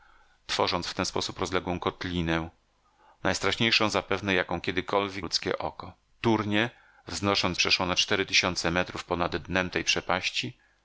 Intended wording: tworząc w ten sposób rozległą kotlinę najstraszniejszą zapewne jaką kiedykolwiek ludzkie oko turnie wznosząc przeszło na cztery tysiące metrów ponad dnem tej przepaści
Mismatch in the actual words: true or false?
false